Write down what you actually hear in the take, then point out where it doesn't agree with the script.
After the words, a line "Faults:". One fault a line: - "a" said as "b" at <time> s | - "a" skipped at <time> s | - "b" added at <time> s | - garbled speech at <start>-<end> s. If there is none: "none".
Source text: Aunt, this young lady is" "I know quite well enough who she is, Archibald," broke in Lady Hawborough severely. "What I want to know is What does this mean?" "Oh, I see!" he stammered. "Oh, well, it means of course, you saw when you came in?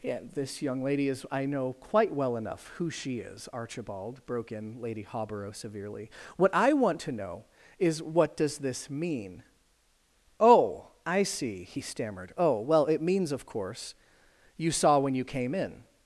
Yeah, this young lady is" "I know quite well enough who she is, Archibald," broke in Lady Hawborough severely. "What I want to know is What does this mean?" "Oh, I see!" he stammered. "Oh, well, it means of course, you saw when you came in?
Faults:
- "Aunt" said as "Yeah" at 0.0 s